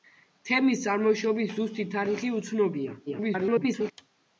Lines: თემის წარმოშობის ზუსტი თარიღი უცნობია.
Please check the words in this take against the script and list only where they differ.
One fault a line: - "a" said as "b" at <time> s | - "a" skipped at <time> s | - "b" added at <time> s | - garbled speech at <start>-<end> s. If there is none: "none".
- garbled speech at 3.1-3.9 s